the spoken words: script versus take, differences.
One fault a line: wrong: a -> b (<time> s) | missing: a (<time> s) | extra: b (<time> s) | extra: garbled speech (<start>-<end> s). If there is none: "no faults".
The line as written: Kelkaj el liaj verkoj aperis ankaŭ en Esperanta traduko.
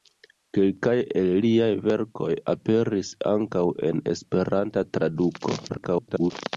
extra: garbled speech (5.7-6.3 s)